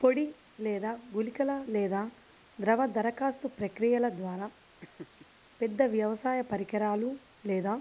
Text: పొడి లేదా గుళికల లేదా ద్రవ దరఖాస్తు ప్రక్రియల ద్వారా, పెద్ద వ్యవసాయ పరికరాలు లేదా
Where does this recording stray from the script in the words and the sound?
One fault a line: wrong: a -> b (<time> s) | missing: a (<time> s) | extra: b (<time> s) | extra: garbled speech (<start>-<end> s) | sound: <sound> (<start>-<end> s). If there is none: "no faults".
sound: laugh (4.8-5.3 s)